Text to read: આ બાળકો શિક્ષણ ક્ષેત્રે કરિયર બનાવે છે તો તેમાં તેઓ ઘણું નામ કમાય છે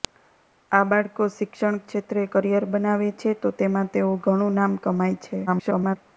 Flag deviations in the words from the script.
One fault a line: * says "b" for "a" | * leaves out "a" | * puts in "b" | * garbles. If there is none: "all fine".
* garbles